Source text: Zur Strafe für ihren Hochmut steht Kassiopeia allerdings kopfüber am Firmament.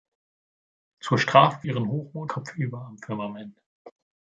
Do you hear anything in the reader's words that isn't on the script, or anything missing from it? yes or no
yes